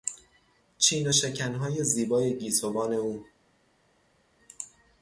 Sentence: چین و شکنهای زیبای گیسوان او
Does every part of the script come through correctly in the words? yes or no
yes